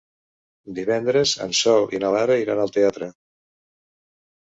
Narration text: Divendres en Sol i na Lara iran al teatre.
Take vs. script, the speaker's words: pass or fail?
pass